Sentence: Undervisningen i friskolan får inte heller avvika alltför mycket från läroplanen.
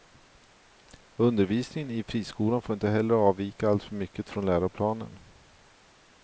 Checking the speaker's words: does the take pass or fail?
pass